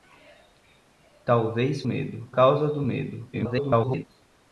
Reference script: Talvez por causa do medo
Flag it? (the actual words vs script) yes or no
yes